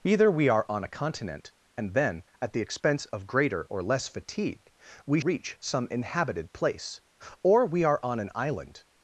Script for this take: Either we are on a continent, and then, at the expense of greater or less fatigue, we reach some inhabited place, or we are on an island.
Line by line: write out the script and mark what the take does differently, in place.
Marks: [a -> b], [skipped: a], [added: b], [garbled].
Either we are on a continent, and then, at the expense of greater or less fatigue, we reach some inhabited place, or we are on an island.